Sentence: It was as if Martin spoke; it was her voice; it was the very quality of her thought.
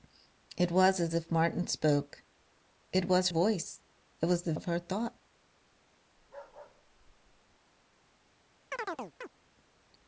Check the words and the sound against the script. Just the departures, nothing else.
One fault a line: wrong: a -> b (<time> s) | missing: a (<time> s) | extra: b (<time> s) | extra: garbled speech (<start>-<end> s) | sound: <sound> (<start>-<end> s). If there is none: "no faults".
missing: her (3.3 s)
missing: very quality (4.5 s)
sound: bark (6.2-7.6 s)
sound: chirp (8.7-9.3 s)